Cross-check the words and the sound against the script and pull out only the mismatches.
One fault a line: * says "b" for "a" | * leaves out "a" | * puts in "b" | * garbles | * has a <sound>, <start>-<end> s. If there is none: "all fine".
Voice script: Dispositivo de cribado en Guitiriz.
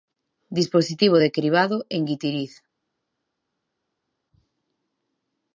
all fine